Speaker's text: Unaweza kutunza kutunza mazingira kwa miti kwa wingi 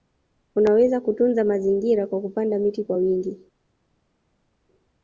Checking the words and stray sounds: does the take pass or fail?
fail